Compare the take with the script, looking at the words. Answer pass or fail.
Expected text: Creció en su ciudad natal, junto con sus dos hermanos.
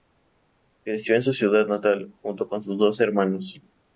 pass